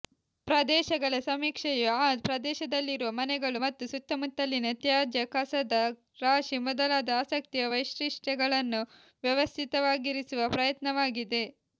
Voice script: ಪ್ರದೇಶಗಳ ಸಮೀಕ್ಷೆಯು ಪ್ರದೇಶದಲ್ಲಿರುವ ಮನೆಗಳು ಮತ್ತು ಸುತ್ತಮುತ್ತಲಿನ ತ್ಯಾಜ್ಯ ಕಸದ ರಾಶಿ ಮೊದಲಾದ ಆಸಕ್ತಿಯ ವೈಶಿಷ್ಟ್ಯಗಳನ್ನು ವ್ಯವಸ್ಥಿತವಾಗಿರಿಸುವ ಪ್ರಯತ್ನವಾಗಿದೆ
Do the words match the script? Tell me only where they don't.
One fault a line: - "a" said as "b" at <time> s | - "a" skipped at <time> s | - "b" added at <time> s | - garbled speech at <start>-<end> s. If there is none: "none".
- "ಆ" added at 2.0 s